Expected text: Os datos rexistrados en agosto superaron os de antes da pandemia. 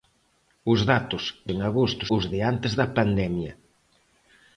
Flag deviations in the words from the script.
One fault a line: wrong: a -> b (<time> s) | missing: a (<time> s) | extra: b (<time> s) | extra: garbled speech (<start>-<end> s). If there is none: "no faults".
missing: rexistrados (1.2 s)
missing: superaron (2.0 s)